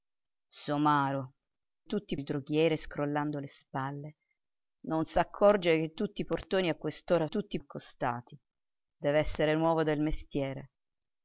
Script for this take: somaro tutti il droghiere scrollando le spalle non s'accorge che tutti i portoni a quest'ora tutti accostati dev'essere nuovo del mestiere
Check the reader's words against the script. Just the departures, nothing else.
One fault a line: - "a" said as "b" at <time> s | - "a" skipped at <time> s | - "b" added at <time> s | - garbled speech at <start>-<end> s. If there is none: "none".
none